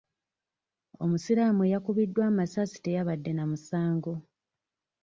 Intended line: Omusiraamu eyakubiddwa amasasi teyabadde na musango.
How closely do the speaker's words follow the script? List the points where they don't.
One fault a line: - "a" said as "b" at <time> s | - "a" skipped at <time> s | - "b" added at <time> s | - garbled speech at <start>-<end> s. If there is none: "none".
none